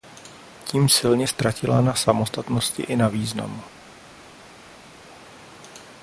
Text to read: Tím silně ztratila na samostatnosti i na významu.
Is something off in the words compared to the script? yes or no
no